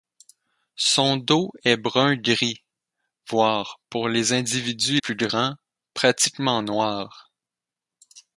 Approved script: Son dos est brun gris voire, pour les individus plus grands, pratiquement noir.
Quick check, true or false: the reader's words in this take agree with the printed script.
true